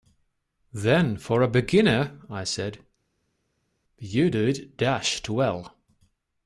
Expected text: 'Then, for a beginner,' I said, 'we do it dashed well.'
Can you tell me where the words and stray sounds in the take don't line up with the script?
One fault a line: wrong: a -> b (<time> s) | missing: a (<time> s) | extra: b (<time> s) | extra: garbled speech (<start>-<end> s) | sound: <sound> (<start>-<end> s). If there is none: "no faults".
wrong: we -> you (4.0 s)